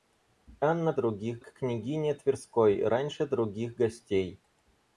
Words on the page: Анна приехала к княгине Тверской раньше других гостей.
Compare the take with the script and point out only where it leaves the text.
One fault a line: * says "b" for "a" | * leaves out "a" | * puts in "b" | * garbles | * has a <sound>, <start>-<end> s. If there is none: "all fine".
* says "других" for "приехала"